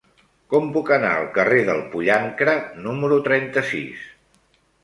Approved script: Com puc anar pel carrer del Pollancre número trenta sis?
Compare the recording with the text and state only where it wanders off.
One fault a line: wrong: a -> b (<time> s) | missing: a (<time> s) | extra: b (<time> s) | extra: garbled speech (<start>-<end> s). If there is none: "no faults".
wrong: pel -> al (1.2 s)